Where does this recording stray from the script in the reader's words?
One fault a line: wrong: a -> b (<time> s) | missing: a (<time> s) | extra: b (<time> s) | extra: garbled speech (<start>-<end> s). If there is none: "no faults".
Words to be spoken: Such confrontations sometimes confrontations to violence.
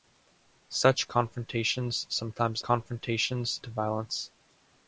no faults